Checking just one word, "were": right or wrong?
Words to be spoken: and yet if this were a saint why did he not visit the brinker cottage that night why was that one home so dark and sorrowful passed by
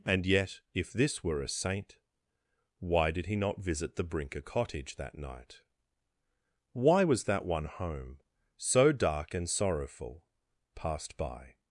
right